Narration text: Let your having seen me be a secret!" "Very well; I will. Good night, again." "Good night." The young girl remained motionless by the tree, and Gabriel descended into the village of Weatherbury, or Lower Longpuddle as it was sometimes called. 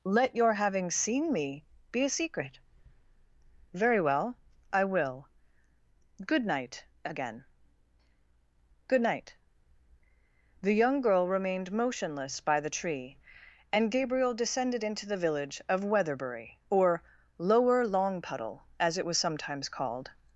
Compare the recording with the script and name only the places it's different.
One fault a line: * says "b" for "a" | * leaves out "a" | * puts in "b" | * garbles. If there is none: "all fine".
all fine